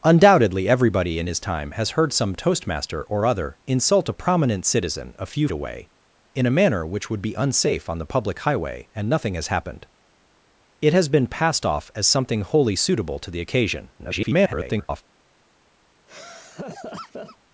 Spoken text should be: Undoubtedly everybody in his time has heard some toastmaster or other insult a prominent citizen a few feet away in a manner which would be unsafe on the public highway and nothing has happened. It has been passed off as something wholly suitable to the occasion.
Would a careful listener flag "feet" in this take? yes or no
yes